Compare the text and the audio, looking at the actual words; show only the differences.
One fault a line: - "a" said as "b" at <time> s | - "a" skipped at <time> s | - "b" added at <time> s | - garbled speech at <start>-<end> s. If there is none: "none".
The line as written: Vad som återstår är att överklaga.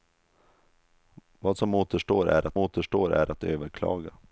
- "återstår är att" added at 2.6 s